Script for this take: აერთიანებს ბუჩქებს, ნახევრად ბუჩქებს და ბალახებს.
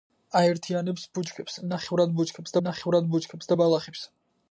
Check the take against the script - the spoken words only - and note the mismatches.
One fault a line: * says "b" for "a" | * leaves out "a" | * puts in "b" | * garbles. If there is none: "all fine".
* puts in "ნახევრად ბუჩქებს"